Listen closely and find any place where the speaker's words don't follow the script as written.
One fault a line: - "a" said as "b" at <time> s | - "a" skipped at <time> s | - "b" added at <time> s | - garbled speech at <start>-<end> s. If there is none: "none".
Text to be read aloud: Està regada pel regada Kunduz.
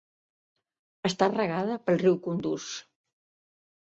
- "regada" said as "riu" at 2.0 s